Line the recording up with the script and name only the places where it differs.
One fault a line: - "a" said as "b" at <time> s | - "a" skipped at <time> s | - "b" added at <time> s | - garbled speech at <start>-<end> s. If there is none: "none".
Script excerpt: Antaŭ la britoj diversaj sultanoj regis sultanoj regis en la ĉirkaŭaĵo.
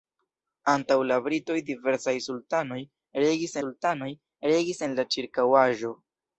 none